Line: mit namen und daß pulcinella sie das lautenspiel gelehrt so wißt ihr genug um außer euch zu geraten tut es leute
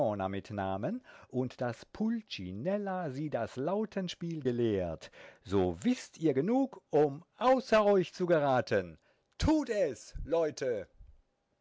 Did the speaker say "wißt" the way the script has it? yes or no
yes